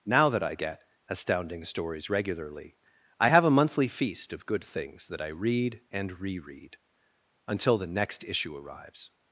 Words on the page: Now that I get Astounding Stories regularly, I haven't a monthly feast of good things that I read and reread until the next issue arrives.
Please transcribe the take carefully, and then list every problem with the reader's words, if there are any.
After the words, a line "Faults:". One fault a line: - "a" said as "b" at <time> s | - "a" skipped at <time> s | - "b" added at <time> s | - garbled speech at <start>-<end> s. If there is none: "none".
Now that I get Astounding Stories regularly, I have a monthly feast of good things that I read and reread until the next issue arrives.
Faults:
- "haven't" said as "have" at 3.3 s